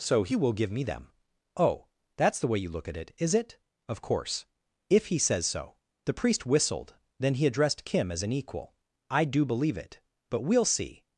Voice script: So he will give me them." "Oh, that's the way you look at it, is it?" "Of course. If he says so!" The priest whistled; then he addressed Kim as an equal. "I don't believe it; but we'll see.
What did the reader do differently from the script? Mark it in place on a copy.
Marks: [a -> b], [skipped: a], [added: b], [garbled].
So he will give me them." "Oh, that's the way you look at it, is it?" "Of course. If he says so!" The priest whistled; then he addressed Kim as an equal. "I [don't -> do] believe it; but we'll see.